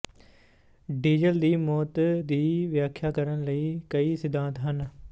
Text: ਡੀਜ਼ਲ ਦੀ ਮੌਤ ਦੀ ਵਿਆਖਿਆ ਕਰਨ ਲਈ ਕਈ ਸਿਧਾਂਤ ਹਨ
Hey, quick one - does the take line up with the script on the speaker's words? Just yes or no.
yes